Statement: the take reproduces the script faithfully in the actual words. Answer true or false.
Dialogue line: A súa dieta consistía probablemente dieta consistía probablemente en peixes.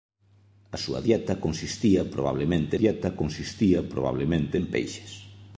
true